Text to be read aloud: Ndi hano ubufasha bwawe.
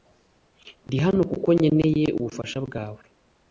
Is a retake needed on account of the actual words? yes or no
yes